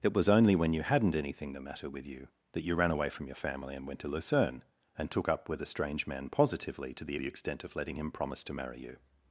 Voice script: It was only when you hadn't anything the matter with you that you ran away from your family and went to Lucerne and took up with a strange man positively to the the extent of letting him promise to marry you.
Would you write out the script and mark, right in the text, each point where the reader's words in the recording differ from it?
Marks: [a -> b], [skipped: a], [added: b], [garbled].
It was only when you hadn't anything the matter with you that you ran away from your family and went to Lucerne and took up with a strange man positively to the the extent of letting him promise to marry you.